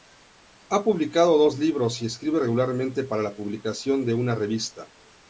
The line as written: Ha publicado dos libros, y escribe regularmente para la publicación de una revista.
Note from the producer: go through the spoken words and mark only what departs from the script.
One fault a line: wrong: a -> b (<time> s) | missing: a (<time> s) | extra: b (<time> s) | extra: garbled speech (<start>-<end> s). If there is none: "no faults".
no faults